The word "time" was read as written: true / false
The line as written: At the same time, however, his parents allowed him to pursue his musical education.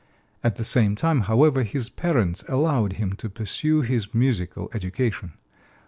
true